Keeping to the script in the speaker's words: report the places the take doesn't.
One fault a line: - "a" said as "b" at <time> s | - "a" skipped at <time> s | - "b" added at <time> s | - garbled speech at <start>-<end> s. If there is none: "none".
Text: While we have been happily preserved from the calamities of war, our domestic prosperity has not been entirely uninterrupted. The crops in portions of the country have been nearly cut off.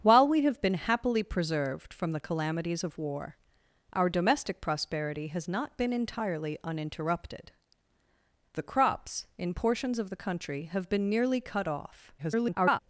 - garbled speech at 12.2-12.8 s